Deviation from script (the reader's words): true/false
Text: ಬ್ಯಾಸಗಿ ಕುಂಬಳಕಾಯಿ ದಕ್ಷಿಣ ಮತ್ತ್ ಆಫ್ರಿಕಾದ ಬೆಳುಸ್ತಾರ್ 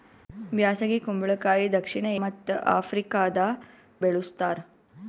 false